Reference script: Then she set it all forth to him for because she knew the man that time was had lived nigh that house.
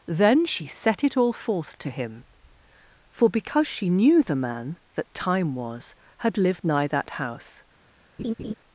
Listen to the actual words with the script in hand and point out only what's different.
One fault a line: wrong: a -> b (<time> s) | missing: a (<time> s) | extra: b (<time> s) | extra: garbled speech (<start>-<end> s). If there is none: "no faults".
no faults